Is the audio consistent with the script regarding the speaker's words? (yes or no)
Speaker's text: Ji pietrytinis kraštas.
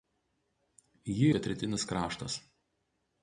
yes